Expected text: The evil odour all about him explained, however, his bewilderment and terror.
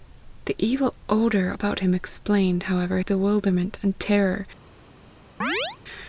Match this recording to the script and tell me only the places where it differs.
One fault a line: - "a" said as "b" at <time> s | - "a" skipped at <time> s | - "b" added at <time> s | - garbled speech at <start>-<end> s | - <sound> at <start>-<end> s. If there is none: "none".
- "all" skipped at 1.5 s
- "his" skipped at 3.0 s
- chirp at 5.4-5.8 s